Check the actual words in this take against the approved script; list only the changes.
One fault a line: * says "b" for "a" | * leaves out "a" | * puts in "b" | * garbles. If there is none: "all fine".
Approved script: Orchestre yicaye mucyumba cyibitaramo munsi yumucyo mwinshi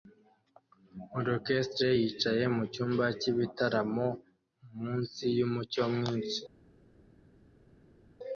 all fine